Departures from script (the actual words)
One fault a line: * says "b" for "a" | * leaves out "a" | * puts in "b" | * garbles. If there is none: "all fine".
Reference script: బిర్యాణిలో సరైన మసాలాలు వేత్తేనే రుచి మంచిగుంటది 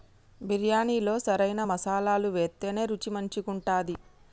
all fine